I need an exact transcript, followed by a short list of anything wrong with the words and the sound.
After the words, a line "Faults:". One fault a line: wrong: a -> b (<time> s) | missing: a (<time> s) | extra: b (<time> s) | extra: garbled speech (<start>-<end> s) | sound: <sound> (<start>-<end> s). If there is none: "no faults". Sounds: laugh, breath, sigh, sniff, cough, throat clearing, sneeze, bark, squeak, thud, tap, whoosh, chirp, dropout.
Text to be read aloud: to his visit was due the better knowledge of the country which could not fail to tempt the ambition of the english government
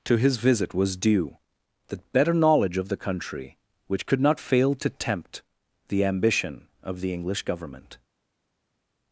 to his visit was due the better knowledge of the country which could not fail to tempt the ambition of the english government
Faults:
no faults